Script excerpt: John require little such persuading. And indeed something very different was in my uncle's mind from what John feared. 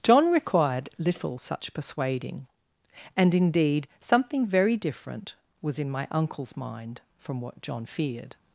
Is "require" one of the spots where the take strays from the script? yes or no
yes